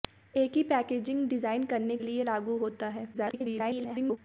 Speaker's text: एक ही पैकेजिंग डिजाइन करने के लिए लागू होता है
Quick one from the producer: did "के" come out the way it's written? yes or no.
no